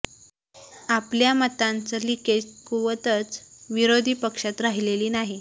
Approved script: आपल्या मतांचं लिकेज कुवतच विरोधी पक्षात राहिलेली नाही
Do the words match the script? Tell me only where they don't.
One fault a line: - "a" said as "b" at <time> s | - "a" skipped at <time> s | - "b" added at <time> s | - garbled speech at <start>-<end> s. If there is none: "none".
none